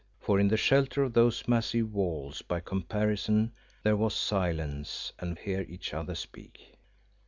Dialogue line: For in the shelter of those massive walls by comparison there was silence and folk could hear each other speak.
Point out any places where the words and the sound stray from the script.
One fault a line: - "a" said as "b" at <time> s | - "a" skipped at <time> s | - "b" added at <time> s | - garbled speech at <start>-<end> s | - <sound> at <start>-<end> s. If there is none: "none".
- "folk could" skipped at 5.4 s